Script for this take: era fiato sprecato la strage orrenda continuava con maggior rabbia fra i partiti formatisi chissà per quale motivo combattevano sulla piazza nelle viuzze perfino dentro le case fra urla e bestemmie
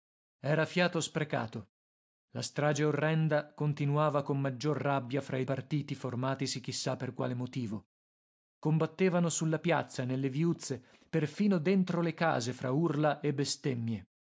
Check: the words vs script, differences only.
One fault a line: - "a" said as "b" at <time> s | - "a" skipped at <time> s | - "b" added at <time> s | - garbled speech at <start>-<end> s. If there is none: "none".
none